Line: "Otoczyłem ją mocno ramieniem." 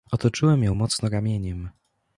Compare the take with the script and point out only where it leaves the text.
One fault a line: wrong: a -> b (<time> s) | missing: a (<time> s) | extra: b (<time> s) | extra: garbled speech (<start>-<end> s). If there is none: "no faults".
no faults